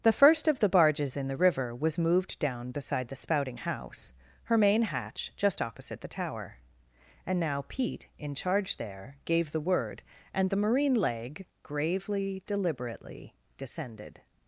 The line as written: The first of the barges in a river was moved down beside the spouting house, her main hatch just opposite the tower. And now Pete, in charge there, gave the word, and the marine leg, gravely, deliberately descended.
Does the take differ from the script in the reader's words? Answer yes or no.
yes